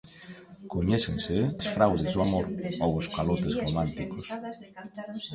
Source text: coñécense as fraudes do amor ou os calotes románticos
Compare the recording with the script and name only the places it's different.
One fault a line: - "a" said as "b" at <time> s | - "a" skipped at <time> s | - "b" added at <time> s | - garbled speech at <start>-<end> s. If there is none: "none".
none